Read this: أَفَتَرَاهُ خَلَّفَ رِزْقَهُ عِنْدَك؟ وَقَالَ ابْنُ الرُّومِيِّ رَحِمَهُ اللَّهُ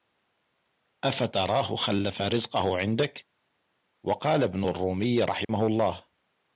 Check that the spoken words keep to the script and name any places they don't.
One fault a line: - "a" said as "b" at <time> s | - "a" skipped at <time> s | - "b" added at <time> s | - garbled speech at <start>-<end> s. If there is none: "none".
none